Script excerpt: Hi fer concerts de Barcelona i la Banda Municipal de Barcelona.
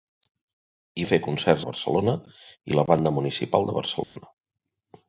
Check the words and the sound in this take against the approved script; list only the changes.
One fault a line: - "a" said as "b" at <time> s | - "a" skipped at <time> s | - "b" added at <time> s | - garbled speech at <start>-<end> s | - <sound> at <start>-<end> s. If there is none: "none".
- dropout at 4.0-4.2 s